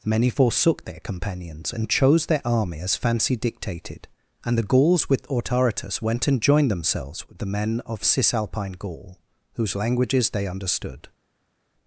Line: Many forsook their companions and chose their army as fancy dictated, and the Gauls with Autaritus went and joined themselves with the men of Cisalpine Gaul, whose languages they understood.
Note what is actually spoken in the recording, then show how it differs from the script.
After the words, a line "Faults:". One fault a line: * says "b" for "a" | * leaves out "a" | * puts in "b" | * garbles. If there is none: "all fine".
Many forsook their companions and chose their army as fancy dictated, and the Gauls with Autaritus went and joined themselves with the men of Cisalpine Gaul, whose languages they understood.
Faults:
all fine